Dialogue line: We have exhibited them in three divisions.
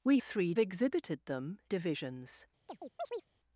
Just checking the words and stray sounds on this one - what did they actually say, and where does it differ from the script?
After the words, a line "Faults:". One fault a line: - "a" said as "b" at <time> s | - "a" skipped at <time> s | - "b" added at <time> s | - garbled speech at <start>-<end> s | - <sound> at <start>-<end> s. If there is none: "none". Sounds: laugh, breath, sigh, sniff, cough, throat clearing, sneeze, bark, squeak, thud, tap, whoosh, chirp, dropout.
We three exhibited them divisions.
Faults:
- "have" said as "three" at 0.2 s
- "in three" skipped at 1.6 s
- chirp at 2.7-3.3 s